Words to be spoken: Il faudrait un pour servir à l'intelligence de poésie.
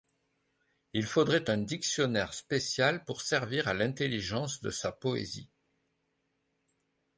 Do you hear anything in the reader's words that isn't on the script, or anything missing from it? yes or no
yes